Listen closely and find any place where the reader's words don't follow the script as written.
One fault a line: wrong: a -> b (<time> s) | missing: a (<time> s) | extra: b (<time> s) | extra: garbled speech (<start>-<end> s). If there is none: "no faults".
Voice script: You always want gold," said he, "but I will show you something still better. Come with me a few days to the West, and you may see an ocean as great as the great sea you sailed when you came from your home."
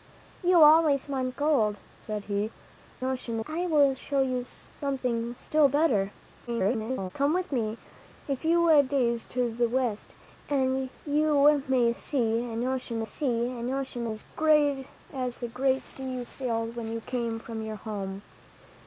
wrong: but -> ocean (3.0 s)
extra: garbled speech (6.5-7.1 s)
extra: see an ocean (13.0 s)